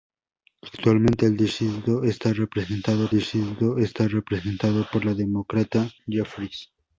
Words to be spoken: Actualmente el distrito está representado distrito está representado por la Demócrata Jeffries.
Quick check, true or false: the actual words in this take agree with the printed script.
true